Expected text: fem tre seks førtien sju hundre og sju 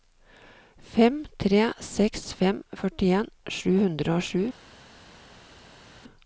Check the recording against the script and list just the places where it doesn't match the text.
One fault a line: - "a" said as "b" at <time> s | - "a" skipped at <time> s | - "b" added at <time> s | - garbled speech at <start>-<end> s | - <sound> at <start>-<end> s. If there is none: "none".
- "fem" added at 2.4 s